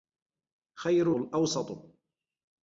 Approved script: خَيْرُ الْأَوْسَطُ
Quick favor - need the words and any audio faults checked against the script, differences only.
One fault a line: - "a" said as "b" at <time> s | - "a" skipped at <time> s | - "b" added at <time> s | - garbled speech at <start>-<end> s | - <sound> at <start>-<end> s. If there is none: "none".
none